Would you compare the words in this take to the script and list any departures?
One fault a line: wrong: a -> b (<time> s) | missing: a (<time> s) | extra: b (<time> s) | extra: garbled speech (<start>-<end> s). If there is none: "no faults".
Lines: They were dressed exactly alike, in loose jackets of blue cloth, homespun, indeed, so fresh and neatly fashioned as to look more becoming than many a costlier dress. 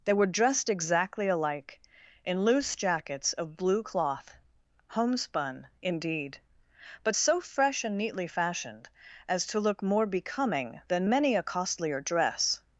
extra: but (7.0 s)